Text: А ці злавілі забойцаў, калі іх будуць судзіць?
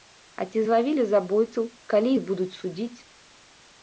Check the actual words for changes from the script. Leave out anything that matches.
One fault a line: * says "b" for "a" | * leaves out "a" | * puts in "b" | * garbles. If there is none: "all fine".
all fine